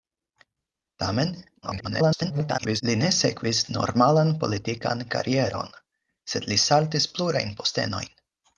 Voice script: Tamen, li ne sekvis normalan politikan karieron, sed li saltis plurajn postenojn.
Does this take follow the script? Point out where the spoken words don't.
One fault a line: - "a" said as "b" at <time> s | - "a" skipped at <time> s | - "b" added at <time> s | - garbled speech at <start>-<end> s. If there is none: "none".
- garbled speech at 1.6-2.8 s